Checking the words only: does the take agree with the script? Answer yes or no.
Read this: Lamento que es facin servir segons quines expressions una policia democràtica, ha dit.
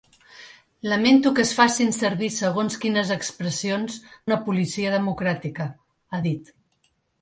yes